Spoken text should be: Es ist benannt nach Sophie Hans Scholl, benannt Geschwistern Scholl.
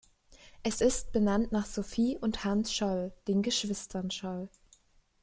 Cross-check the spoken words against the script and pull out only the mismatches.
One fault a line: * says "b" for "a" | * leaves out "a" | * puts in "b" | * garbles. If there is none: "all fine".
* puts in "und"
* says "den" for "benannt"